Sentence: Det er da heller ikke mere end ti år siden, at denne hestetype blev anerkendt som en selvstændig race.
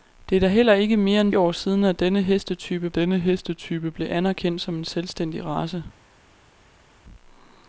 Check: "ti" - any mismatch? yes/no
yes